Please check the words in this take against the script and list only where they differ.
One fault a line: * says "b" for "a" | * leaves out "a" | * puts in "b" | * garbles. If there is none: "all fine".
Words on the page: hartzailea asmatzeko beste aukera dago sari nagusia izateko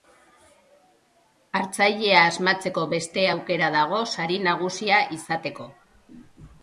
all fine